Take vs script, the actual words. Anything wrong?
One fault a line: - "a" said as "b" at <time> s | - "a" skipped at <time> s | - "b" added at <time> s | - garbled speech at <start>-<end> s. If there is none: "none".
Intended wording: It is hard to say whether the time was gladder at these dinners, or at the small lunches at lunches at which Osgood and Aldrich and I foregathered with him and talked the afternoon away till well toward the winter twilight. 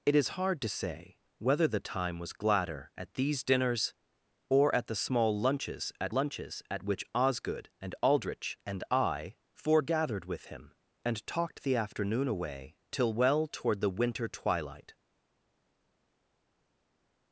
none